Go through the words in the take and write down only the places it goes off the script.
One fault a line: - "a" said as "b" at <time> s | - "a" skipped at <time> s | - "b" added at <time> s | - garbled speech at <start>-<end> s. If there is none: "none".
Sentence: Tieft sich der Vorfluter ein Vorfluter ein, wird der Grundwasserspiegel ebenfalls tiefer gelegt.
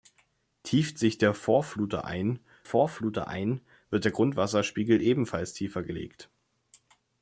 none